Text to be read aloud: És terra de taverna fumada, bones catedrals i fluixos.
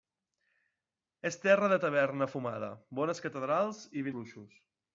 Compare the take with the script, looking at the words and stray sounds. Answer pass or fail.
pass